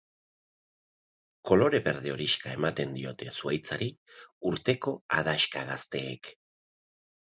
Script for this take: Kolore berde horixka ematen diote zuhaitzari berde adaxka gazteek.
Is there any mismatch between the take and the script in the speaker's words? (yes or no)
yes